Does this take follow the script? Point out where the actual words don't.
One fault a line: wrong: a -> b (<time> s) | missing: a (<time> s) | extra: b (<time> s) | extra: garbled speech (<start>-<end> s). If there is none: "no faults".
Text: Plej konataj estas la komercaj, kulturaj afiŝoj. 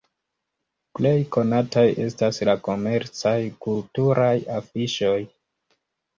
no faults